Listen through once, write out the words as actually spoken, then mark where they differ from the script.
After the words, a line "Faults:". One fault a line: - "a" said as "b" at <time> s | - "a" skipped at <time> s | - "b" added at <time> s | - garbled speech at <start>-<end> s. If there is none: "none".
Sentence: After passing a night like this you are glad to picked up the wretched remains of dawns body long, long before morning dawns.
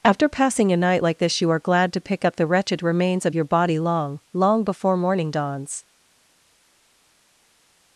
After passing a night like this you are glad to pick up the wretched remains of your body long, long before morning dawns.
Faults:
- "picked" said as "pick" at 2.0 s
- "dawns" said as "your" at 3.3 s